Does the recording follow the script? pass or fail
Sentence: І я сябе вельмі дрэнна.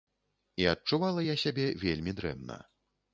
fail